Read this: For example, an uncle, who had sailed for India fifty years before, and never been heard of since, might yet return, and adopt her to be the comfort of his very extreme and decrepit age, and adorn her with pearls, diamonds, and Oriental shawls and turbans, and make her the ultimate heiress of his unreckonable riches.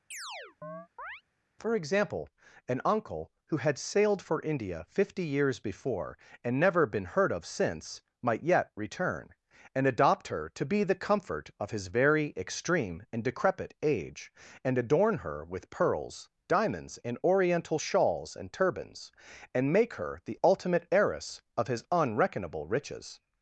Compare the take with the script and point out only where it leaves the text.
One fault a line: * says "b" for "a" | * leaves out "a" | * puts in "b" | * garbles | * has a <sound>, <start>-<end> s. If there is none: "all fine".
* has a chirp, 0.1-1.2 s